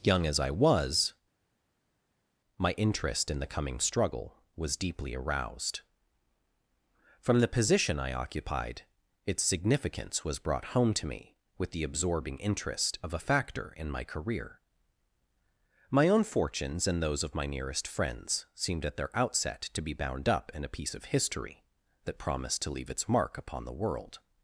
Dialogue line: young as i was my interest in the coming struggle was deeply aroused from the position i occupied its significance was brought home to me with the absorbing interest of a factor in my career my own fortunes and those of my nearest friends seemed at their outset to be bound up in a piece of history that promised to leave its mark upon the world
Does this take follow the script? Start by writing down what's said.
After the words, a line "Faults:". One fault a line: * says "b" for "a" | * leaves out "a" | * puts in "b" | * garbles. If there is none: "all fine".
young as i was my interest in the coming struggle was deeply aroused from the position i occupied its significance was brought home to me with the absorbing interest of a factor in my career my own fortunes and those of my nearest friends seemed at their outset to be bound up in a piece of history that promised to leave its mark upon the world
Faults:
all fine